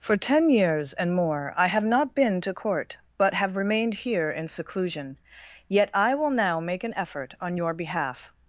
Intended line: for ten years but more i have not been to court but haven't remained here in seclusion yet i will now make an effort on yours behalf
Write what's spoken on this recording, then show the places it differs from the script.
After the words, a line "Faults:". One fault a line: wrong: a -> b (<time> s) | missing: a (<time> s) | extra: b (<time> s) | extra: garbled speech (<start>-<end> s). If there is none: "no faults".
for ten years and more i have not been to court but have remained here in seclusion yet i will now make an effort on your behalf
Faults:
wrong: but -> and (0.9 s)
wrong: haven't -> have (3.4 s)
wrong: yours -> your (7.5 s)